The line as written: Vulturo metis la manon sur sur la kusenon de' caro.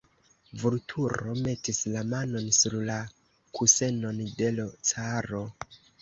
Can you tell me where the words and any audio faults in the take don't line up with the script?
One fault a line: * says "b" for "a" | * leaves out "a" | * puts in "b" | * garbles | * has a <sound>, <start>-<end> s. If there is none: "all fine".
* leaves out "sur"
* puts in "l"